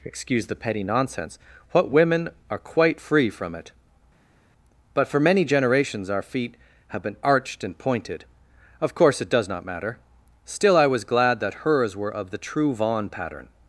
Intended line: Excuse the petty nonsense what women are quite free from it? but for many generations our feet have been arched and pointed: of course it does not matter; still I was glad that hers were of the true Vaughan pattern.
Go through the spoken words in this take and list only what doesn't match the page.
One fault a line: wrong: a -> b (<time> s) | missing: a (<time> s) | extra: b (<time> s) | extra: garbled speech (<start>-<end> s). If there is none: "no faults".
no faults